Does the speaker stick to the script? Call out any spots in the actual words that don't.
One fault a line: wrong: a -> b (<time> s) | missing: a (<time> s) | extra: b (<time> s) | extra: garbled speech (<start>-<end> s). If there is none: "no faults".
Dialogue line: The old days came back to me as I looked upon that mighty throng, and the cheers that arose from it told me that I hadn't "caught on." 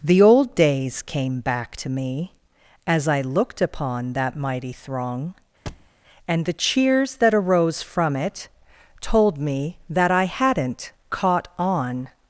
no faults